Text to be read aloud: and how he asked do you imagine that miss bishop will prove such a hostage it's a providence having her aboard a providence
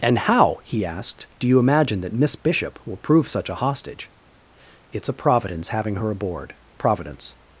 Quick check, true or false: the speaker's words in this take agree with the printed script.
false